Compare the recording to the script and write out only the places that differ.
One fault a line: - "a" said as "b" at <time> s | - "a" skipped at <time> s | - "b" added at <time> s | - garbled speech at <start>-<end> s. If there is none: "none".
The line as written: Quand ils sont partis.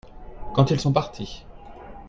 none